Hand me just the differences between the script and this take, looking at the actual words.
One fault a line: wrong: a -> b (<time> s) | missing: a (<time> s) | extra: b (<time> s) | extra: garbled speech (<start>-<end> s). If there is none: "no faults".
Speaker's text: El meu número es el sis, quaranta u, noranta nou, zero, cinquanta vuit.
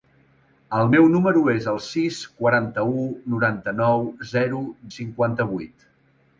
no faults